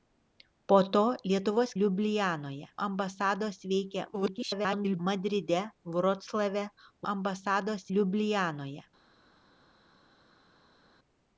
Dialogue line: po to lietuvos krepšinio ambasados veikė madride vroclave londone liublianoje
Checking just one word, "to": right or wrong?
right